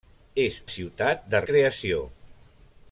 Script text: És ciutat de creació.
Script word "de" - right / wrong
right